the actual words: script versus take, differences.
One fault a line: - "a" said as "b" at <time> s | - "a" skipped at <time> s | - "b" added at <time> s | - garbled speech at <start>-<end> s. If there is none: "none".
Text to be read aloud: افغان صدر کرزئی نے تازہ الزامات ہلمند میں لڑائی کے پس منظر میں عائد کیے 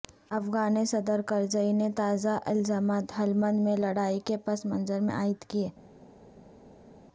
none